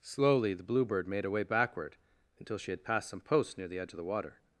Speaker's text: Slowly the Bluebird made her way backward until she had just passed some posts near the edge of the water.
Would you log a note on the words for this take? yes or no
yes